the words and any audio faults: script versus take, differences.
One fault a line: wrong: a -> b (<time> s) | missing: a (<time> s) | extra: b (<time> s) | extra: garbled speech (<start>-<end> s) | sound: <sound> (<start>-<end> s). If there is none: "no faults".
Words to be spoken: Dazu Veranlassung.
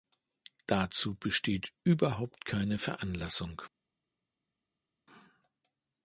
extra: besteht überhaupt keine (1.1 s)